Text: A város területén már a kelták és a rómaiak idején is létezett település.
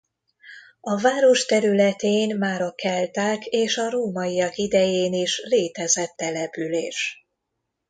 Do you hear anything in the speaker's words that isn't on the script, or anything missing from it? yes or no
no